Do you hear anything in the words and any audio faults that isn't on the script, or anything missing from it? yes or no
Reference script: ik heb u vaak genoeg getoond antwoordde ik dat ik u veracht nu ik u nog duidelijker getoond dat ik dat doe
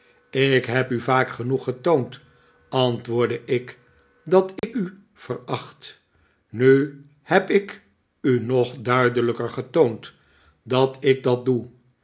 yes